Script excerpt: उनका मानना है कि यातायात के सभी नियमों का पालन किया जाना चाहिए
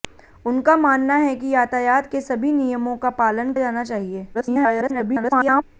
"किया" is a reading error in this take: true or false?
true